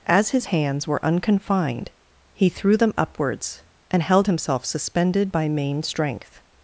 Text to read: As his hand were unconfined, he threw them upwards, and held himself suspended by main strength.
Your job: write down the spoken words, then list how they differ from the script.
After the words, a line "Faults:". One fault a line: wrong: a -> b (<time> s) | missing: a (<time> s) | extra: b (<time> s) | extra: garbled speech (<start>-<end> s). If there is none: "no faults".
As his hands were unconfined, he threw them upwards, and held himself suspended by main strength.
Faults:
wrong: hand -> hands (0.4 s)